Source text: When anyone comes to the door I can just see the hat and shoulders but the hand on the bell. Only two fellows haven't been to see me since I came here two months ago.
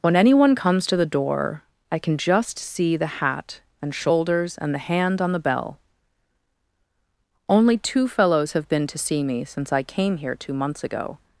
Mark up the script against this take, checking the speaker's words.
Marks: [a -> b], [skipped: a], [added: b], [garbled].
When anyone comes to the door I can just see the hat and shoulders [but -> and] the hand on the bell. Only two fellows [haven't -> have] been to see me since I came here two months ago.